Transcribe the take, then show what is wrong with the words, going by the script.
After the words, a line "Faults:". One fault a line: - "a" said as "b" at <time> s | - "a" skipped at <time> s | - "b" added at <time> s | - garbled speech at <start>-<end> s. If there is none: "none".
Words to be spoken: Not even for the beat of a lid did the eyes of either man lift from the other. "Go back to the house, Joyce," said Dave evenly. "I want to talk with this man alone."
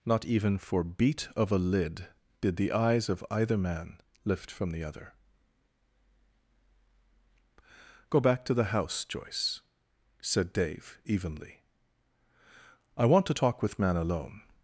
Not even for beat of a lid did the eyes of either man lift from the other. "Go back to the house, Joyce," said Dave evenly. "I want to talk with man alone."
Faults:
- "the" skipped at 0.8 s
- "this" skipped at 13.8 s